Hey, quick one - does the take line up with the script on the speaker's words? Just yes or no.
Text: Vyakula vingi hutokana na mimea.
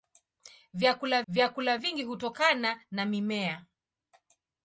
no